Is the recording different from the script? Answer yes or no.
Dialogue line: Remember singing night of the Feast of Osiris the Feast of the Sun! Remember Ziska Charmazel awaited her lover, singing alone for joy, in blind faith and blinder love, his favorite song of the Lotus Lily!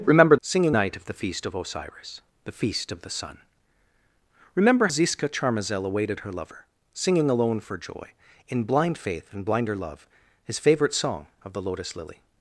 no